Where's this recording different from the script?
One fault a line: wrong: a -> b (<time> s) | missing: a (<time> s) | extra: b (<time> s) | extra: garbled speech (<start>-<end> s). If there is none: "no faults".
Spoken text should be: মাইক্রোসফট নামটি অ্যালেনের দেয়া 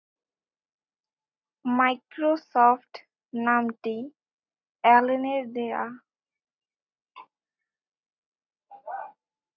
no faults